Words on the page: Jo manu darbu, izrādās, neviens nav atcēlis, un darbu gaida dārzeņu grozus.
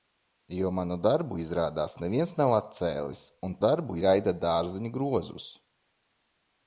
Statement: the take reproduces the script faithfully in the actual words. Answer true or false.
true